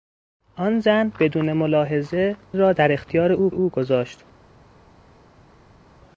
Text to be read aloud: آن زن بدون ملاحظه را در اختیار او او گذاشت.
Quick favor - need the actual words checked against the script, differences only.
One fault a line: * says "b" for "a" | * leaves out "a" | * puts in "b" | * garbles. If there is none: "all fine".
all fine